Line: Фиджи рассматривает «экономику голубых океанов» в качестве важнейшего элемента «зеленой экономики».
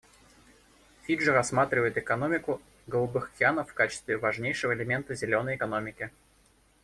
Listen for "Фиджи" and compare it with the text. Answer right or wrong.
right